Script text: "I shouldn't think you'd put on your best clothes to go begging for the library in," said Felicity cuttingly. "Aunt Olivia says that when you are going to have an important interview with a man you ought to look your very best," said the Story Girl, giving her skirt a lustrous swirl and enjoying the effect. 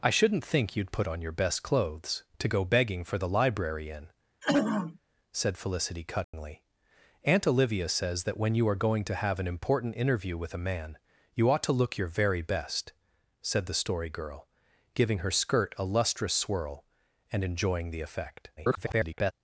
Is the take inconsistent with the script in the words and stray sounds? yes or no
yes